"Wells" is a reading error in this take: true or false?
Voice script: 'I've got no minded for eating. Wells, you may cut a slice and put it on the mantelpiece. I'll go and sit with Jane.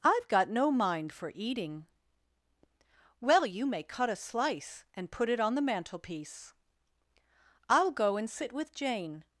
true